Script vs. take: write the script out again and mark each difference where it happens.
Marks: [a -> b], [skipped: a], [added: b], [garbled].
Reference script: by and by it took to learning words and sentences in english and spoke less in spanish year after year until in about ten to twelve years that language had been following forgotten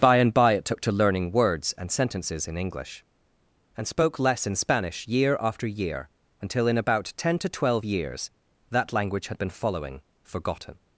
by and by it took to learning words and sentences in english and spoke less in spanish year after year until in about ten to twelve years that language had been following forgotten